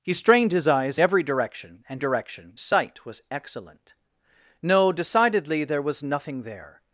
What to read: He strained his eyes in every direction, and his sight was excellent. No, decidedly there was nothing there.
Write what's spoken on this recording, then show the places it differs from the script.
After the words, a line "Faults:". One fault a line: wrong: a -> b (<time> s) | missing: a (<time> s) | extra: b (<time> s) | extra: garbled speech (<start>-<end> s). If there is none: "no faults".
He strained his eyes every direction, and direction sight was excellent. No, decidedly there was nothing there.
Faults:
missing: in (1.0 s)
wrong: his -> direction (2.0 s)